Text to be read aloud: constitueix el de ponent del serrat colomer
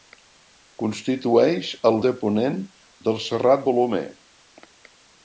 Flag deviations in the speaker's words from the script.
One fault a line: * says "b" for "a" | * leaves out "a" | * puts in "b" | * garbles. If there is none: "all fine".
all fine